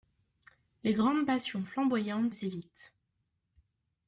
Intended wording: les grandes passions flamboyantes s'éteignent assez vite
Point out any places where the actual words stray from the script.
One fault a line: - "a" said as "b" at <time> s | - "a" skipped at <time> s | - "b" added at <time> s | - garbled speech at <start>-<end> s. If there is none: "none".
- "s'éteignent" skipped at 2.3 s